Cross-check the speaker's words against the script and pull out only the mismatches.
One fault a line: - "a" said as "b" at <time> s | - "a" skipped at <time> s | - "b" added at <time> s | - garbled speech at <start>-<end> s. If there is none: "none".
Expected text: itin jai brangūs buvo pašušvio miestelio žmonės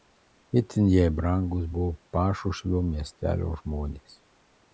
none